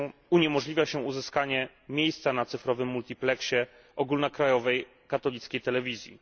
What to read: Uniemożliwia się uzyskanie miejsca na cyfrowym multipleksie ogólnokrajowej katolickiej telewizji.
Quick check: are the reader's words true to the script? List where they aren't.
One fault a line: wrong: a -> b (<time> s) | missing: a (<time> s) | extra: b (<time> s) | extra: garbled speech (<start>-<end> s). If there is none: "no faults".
no faults